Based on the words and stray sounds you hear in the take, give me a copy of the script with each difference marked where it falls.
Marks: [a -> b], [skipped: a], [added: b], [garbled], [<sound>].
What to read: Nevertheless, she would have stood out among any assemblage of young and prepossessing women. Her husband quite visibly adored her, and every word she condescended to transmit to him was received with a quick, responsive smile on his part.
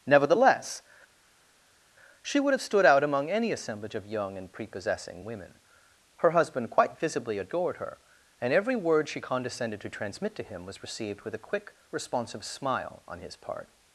Nevertheless, she would have stood out among any assemblage of young and prepossessing women. Her husband quite visibly adored her, and every word she condescended to transmit to him was received with a quick, responsive smile on his part.